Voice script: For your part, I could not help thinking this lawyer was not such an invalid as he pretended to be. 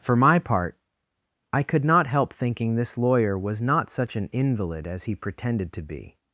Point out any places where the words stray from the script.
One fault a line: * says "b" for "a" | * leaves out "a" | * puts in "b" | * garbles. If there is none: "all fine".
* says "my" for "your"